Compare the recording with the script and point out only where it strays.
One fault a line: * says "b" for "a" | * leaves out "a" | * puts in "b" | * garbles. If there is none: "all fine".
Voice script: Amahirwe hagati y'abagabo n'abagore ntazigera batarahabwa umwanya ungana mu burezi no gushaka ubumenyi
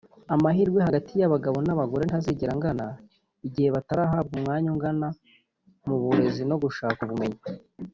* puts in "angana igihe"